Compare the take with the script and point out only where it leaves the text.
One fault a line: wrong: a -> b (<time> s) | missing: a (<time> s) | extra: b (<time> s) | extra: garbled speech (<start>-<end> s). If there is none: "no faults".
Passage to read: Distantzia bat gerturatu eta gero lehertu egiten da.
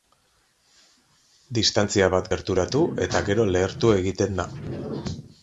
no faults